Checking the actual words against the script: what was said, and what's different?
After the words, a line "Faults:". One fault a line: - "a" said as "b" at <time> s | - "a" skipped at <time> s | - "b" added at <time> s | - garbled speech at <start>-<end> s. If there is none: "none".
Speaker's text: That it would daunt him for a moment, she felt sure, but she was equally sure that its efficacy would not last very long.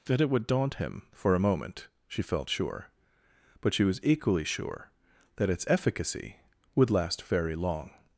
That it would daunt him for a moment, she felt sure, but she was equally sure that its efficacy would last very long.
Faults:
- "not" skipped at 6.9 s